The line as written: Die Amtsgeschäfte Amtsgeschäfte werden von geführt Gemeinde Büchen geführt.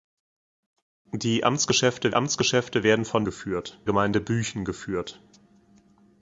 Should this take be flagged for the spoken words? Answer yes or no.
no